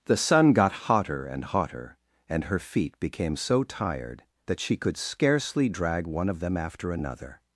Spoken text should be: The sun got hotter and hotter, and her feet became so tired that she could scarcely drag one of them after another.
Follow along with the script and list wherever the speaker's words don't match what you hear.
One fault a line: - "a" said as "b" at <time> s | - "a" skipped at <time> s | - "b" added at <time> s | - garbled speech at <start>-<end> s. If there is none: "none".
none